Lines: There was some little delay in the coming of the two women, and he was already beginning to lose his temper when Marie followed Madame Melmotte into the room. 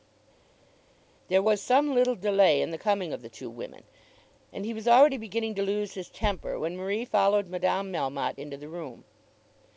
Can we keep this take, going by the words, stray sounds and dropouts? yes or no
yes